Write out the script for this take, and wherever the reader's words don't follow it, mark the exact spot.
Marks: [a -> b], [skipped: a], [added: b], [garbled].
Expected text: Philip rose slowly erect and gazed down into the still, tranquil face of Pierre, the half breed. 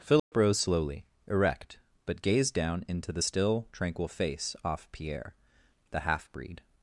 Philip rose slowly erect [and -> but] gazed down into the still, tranquil face [of -> off] Pierre, the half breed.